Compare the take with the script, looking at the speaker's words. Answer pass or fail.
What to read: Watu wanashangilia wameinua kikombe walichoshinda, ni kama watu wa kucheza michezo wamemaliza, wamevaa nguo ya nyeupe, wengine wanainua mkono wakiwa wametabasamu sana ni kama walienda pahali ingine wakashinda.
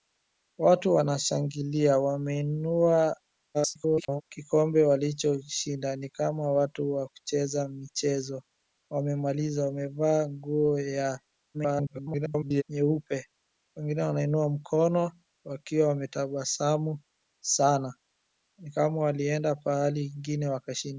fail